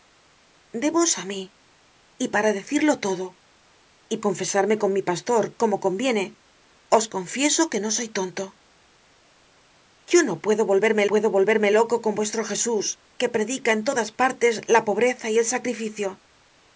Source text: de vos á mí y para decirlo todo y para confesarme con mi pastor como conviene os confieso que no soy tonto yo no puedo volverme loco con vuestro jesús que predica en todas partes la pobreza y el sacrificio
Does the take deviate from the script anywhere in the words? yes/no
yes